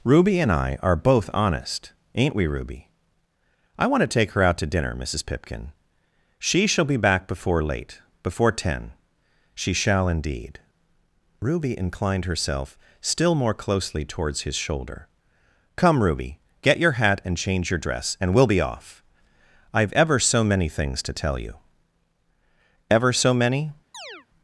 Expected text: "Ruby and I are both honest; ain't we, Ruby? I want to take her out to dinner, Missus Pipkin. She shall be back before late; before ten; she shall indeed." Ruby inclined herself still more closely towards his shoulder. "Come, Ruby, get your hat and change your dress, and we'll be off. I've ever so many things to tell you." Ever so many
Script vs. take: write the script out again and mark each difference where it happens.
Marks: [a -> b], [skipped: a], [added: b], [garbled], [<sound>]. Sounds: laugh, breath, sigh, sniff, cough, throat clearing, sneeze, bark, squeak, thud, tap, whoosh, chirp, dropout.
"Ruby and I are both honest; ain't we, Ruby? I want to take her out to dinner, Missus Pipkin. She shall be back before late; before ten; she shall indeed." Ruby inclined herself still more closely towards his shoulder. "Come, Ruby, get your hat and change your dress, and we'll be off. I've ever so many things to tell you." Ever so many [chirp]